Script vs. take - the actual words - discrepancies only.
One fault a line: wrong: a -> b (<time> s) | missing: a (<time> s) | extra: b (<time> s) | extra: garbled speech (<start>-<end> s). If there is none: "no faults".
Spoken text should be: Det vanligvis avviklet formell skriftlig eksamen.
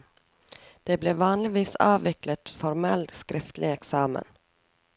extra: ble (1.0 s)